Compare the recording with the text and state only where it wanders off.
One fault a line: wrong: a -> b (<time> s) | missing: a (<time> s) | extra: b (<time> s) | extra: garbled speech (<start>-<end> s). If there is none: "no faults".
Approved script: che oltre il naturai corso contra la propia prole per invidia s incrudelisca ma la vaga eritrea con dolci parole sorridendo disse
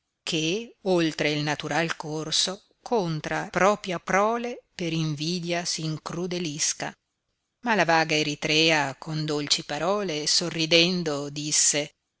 missing: la (3.5 s)